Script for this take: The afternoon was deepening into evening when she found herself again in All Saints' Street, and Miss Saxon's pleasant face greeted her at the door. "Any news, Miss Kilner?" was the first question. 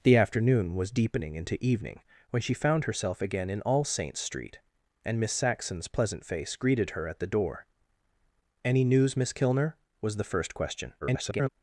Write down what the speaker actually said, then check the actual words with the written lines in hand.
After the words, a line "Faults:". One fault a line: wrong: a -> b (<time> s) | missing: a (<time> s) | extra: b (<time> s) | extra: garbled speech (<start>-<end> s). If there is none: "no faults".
The afternoon was deepening into evening when she found herself again in All Saints' Street, and Miss Saxon's pleasant face greeted her at the door. "Any news, Miss Kilner?" was the first question. [garbled]
Faults:
extra: garbled speech (11.0-11.5 s)